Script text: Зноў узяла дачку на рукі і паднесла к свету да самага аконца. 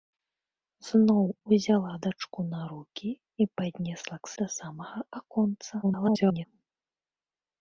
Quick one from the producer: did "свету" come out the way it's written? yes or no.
no